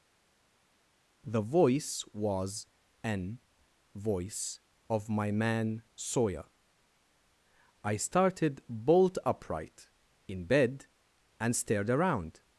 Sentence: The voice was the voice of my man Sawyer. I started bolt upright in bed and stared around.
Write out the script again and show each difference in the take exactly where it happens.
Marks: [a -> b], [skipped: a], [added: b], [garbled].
The voice was [the -> an] voice of my man Sawyer. I started bolt upright in bed and stared around.